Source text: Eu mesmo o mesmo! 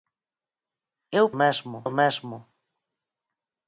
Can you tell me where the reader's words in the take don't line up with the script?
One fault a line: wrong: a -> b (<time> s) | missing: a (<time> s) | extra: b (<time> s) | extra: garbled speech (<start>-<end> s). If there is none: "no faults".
no faults